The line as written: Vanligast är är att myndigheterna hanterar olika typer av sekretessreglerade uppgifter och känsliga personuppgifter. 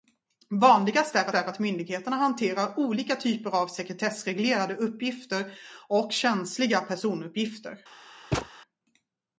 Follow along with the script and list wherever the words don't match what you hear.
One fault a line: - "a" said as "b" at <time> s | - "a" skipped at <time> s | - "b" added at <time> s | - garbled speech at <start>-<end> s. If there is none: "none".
none